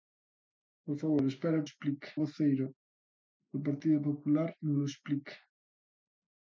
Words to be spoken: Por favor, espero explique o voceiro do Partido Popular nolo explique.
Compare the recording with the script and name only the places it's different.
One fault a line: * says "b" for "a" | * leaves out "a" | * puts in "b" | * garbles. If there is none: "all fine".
all fine